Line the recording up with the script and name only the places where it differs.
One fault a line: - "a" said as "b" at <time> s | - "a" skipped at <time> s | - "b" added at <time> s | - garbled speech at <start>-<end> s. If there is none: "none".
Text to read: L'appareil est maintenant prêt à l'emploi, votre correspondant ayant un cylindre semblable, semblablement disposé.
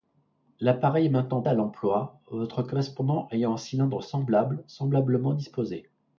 - "prêt" skipped at 1.4 s